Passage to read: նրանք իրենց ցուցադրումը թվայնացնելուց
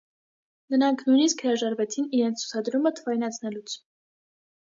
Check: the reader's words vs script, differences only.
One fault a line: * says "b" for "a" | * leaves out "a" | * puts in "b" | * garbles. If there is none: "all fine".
* puts in "նույնիսկ հրաժարվեցին"